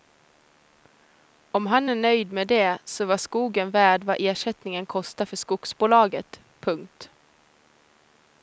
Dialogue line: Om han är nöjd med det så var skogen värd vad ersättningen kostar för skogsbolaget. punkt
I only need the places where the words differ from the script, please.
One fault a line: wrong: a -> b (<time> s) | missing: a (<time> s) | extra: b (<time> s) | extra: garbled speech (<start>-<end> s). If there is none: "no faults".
no faults